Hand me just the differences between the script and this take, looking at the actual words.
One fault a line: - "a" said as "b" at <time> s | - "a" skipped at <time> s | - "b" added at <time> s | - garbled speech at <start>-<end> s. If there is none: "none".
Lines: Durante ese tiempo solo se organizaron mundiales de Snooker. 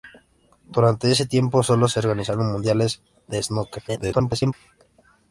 - garbled speech at 3.9-4.5 s